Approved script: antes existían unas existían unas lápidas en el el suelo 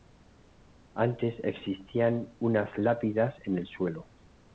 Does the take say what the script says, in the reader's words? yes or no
no